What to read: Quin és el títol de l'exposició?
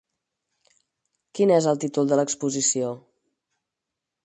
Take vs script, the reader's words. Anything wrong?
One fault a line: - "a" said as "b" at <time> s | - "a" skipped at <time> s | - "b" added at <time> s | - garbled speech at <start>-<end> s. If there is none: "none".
none